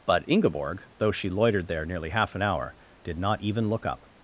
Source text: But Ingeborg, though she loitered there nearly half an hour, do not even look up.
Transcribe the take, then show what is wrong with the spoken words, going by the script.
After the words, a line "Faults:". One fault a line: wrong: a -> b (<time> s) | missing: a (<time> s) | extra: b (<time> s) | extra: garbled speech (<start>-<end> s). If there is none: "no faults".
But Ingeborg, though she loitered there nearly half an hour, did not even look up.
Faults:
wrong: do -> did (3.0 s)